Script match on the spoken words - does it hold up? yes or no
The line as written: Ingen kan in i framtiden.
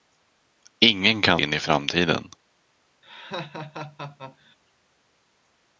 yes